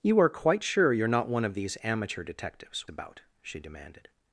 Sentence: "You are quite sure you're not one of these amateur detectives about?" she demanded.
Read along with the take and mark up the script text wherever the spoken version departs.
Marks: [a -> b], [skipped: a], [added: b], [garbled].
"You are quite sure you're not one of these amateur detectives about?" she demanded.